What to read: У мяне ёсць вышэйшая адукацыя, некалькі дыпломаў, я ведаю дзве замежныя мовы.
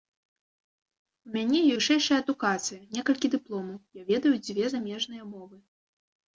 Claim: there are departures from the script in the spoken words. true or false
true